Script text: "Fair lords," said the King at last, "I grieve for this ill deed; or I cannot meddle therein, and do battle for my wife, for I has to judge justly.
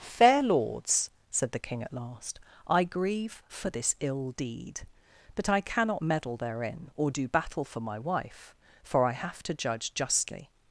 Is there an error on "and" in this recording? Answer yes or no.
yes